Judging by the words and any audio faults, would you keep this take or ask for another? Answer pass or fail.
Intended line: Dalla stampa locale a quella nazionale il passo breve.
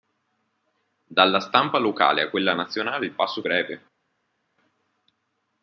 pass